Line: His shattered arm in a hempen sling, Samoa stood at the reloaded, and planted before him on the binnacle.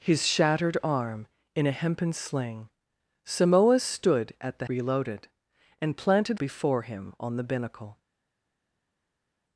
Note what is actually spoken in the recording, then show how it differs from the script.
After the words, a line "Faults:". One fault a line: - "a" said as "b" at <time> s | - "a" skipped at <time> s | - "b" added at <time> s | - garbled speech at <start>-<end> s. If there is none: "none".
His shattered arm in a hempen sling, Samoa stood at the reloaded, and planted before him on the binnacle.
Faults:
none